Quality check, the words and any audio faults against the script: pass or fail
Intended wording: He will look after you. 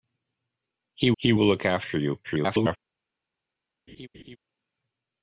fail